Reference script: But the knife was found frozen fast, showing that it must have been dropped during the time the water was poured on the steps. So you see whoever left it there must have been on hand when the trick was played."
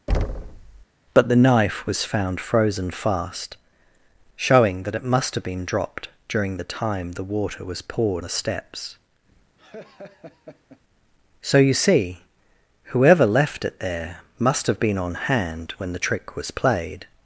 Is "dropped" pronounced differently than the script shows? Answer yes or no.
no